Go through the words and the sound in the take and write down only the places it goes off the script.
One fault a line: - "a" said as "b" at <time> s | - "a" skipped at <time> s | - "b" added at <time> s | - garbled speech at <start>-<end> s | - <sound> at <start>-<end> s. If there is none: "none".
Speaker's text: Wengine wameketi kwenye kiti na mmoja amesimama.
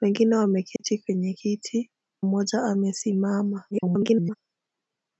- dropout at 0.8-0.8 s
- "na" skipped at 1.9 s
- garbled speech at 3.7-4.4 s